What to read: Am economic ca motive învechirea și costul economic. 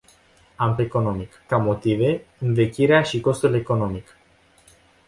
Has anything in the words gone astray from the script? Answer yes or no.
no